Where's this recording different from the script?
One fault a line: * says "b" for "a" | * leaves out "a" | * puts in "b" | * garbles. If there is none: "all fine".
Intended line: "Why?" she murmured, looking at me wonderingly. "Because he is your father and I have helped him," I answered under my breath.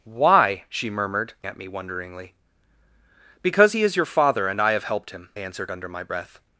* leaves out "looking"
* leaves out "I"